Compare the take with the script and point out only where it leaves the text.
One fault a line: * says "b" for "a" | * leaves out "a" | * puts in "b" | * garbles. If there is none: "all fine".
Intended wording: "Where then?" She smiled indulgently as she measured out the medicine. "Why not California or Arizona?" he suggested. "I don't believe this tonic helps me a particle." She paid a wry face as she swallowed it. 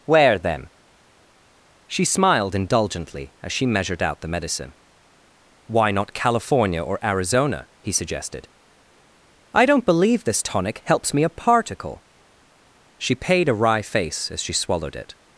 all fine